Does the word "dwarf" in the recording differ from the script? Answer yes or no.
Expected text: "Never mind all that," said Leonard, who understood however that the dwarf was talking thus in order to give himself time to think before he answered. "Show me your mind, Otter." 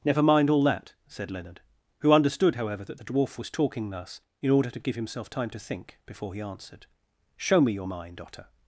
no